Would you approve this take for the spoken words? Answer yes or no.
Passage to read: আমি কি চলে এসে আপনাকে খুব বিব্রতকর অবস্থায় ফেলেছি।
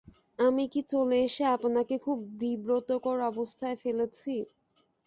yes